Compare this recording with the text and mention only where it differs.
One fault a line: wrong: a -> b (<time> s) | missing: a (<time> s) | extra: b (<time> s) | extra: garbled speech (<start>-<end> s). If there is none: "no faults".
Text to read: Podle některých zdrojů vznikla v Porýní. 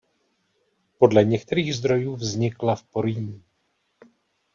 no faults